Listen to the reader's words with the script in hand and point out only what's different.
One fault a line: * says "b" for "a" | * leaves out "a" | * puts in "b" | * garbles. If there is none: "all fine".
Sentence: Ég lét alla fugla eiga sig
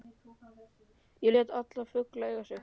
all fine